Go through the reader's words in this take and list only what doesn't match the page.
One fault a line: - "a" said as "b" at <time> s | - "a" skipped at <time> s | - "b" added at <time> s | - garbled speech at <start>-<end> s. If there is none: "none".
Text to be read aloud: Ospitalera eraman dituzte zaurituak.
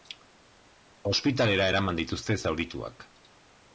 none